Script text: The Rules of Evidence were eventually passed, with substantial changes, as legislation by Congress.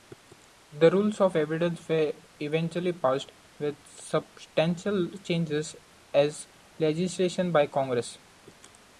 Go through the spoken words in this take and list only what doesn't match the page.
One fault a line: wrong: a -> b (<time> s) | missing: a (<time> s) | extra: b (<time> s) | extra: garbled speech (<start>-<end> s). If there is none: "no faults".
no faults